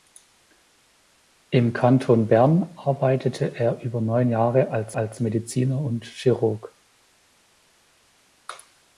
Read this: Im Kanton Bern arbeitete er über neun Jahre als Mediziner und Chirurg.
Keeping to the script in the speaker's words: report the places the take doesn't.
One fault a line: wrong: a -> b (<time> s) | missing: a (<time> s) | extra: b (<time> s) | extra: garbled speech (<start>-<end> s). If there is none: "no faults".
extra: als (4.9 s)